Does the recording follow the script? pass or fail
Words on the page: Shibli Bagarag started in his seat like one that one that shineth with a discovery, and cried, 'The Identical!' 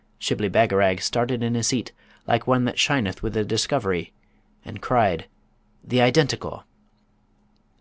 fail